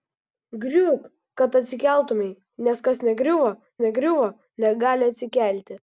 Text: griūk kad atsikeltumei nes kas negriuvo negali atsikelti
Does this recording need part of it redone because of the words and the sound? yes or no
yes